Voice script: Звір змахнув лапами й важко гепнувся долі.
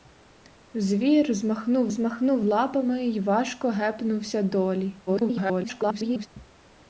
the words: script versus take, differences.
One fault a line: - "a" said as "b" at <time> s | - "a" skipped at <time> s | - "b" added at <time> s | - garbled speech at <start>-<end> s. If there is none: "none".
- "змахнув" added at 1.9 s
- garbled speech at 5.1-6.3 s